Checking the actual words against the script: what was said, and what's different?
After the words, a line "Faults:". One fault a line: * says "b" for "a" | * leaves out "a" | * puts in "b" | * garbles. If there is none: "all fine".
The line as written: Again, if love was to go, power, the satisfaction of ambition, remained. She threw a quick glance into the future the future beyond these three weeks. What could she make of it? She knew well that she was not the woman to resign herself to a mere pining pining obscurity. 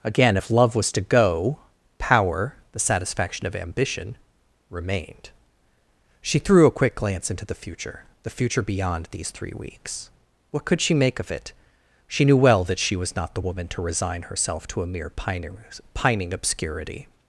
Again, if love was to go, power, the satisfaction of ambition, remained. She threw a quick glance into the future the future beyond these three weeks. What could she make of it? She knew well that she was not the woman to resign herself to a mere pining pining obscurity.
Faults:
all fine